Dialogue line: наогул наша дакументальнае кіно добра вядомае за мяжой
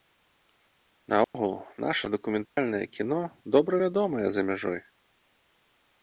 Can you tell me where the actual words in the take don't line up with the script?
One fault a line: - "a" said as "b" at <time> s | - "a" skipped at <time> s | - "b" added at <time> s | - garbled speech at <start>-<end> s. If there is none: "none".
none